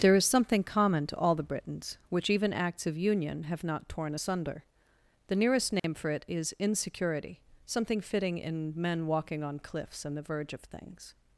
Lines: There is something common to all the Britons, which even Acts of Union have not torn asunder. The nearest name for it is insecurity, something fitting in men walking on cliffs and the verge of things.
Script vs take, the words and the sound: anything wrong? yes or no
yes